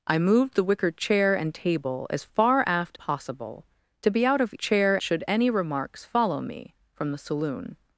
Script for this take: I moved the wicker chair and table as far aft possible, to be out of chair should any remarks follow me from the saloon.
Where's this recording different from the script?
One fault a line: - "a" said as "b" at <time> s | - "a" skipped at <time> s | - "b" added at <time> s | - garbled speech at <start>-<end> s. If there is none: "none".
none